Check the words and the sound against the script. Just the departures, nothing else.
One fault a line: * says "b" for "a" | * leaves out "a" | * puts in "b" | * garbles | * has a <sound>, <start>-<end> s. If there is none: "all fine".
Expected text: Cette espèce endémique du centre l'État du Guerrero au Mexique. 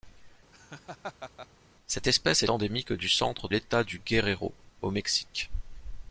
* has a laugh, 0.5-1.5 s